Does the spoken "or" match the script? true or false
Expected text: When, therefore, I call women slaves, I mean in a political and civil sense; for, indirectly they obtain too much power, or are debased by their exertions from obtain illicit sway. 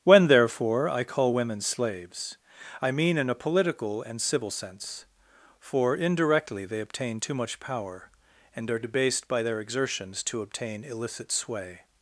false